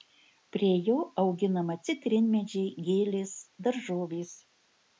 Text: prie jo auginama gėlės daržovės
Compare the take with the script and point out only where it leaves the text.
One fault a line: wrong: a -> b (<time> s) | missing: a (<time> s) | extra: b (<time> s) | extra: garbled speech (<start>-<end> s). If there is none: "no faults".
extra: citrinmedžiai (1.9 s)